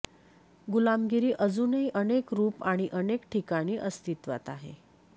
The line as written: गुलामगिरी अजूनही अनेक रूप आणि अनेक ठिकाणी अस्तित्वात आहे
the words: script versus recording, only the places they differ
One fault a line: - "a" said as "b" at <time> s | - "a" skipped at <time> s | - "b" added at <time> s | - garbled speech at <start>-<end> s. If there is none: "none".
none